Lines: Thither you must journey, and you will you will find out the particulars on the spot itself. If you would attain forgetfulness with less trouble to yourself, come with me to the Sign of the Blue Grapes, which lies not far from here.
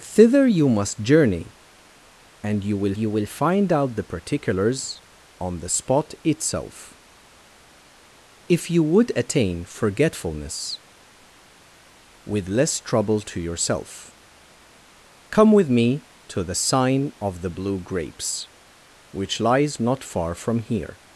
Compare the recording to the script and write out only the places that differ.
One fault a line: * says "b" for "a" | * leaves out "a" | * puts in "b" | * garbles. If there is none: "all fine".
all fine